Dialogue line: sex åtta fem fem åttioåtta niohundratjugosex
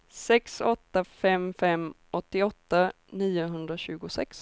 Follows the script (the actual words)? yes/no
yes